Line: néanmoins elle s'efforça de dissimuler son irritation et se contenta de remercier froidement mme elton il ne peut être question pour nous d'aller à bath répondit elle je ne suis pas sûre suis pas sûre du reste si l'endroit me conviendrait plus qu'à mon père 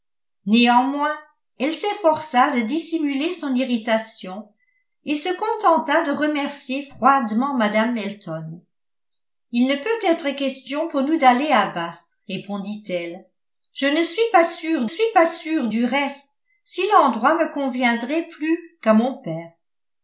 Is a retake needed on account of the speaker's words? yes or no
no